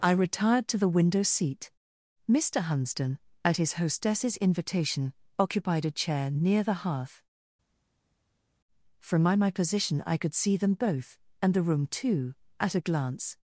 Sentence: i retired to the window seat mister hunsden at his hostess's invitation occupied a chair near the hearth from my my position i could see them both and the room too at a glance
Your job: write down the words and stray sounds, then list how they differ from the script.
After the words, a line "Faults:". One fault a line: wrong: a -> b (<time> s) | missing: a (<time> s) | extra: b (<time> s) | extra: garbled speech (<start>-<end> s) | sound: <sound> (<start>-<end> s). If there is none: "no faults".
i retired to the window seat mister hunsden at his hostess's invitation occupied a chair near the hearth from my my position i could see them both and the room too at a glance
Faults:
no faults